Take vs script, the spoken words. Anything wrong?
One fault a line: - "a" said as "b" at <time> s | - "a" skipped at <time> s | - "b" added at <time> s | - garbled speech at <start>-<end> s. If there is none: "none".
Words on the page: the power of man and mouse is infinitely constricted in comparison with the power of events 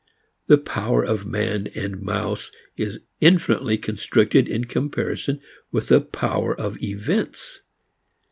none